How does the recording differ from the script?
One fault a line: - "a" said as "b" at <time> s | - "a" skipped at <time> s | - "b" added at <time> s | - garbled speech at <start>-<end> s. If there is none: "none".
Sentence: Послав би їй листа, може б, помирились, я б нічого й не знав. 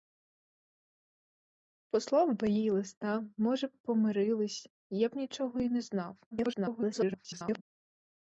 - garbled speech at 6.3-7.6 s